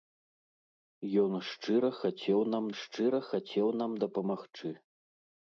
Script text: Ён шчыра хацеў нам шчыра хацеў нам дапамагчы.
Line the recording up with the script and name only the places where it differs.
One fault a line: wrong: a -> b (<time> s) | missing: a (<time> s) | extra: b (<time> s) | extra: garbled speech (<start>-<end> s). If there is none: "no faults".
no faults